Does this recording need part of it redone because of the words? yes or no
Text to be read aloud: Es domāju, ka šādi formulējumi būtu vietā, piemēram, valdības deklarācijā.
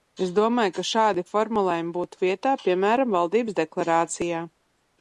no